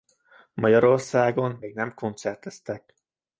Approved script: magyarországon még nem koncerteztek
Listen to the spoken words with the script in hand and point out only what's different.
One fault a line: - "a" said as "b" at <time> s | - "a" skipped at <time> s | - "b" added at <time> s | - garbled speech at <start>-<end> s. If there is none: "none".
none